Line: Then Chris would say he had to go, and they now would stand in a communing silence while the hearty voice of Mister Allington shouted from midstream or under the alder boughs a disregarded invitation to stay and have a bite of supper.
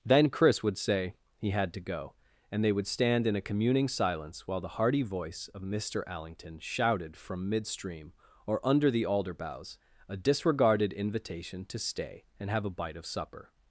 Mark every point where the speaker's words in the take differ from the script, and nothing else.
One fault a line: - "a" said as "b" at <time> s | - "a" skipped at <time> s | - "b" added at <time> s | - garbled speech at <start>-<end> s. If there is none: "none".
- "now" skipped at 2.7 s